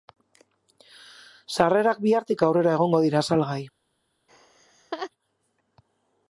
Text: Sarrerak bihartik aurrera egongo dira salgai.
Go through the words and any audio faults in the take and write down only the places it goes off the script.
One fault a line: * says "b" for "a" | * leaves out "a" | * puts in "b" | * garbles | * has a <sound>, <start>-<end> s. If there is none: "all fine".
* has a laugh, 4.3-5.1 s